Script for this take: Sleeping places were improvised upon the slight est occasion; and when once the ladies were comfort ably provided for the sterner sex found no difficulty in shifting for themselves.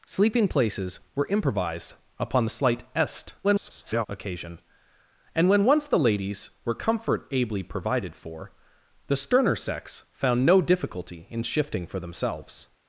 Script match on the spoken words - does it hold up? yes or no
no